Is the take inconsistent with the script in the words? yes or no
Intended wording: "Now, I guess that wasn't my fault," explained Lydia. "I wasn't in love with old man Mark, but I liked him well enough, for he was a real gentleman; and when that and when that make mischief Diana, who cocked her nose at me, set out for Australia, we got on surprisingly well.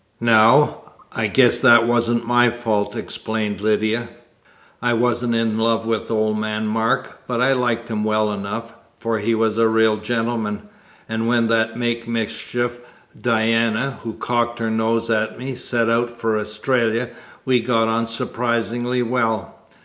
yes